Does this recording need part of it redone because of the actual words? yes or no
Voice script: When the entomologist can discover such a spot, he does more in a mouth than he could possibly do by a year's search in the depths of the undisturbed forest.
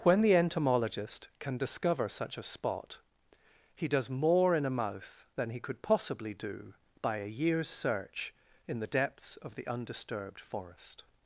no